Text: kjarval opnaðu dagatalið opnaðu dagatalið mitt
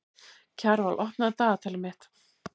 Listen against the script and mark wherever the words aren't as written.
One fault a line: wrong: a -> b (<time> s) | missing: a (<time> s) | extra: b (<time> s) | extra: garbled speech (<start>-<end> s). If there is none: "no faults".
missing: opnaðu dagatalið (1.9 s)